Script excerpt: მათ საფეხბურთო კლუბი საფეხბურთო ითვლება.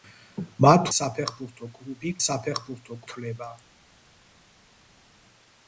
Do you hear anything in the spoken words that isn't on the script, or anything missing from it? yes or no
no